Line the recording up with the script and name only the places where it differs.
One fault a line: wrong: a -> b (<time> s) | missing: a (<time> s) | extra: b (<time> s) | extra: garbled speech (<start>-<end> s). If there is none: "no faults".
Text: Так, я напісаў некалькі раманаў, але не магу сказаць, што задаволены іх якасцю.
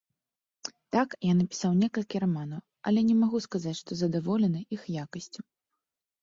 no faults